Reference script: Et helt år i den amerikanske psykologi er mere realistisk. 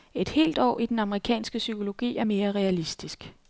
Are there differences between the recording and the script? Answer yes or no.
no